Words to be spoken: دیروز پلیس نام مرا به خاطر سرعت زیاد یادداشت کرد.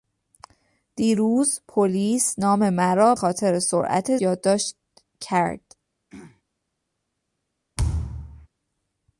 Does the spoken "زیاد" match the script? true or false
false